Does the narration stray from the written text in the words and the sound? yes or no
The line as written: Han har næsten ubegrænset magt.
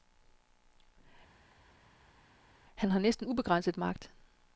no